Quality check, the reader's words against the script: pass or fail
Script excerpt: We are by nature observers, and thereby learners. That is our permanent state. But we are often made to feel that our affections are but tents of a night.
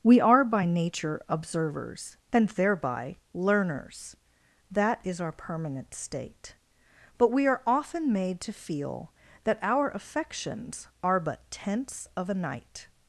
pass